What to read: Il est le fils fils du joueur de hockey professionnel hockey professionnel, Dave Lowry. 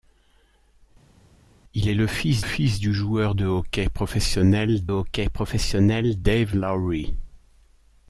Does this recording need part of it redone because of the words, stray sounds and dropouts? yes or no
no